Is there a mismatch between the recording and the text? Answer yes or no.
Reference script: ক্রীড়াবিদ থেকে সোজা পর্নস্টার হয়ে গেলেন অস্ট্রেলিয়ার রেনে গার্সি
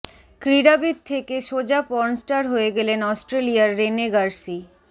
no